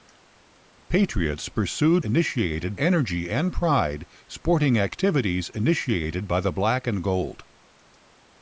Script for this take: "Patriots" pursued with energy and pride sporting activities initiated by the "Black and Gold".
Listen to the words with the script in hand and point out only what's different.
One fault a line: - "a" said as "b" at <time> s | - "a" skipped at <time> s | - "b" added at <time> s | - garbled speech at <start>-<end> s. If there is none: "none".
- "with" said as "initiated" at 2.0 s